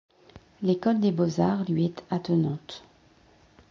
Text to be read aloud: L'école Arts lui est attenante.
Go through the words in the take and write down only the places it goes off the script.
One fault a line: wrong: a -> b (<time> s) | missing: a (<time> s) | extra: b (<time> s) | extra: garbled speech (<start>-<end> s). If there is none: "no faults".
extra: des Beaux (1.0 s)